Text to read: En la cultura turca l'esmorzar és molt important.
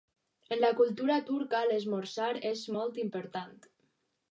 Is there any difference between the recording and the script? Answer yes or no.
no